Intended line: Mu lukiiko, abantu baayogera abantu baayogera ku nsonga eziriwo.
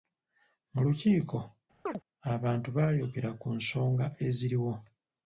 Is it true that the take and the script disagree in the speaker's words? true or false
true